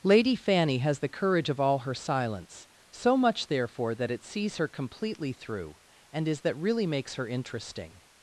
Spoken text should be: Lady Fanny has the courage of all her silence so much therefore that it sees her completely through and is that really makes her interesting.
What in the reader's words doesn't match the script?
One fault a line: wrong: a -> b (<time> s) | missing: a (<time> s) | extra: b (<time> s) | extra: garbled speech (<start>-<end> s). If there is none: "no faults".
no faults